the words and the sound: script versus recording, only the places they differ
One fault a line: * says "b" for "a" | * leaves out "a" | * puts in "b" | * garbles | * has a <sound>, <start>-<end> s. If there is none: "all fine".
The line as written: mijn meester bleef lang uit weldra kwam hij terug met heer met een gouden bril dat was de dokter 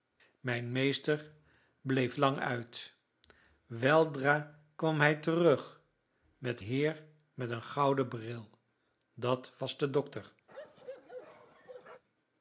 * has a bark, 10.5-12.0 s